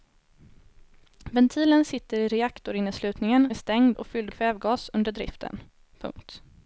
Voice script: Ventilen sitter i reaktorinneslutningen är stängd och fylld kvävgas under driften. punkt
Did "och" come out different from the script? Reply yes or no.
no